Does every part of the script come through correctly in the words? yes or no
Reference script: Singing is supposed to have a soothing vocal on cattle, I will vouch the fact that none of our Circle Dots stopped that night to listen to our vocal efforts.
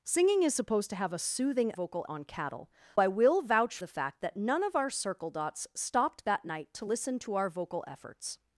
yes